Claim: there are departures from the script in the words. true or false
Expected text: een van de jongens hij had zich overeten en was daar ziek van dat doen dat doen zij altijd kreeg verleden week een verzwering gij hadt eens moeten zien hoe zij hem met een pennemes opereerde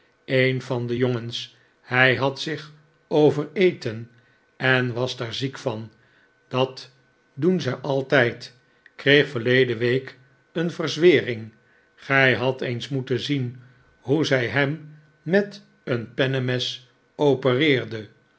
true